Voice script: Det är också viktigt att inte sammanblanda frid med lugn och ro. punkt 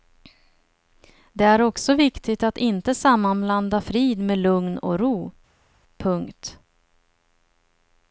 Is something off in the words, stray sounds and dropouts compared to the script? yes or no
no